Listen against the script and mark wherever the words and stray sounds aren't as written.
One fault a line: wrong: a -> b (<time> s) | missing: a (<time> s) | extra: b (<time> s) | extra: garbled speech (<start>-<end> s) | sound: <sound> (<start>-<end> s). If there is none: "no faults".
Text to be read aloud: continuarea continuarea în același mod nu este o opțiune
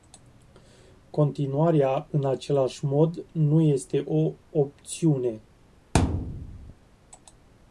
missing: continuarea (2.1 s)
sound: thud (5.9-6.7 s)